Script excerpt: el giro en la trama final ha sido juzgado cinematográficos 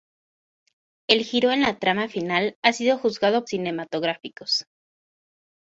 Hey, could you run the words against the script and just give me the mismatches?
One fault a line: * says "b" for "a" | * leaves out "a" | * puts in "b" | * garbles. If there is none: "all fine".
all fine